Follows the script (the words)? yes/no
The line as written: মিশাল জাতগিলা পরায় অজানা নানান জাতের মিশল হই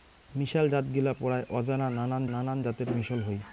no